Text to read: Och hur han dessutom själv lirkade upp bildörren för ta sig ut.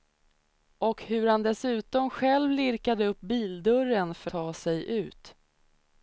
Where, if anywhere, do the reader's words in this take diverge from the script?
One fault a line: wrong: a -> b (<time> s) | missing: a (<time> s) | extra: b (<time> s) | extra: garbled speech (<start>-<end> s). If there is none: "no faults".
no faults